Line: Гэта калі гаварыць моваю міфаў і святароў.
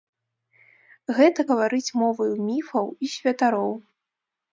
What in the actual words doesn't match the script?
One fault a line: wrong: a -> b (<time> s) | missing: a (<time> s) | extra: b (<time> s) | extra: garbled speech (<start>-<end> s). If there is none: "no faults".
missing: калі (1.4 s)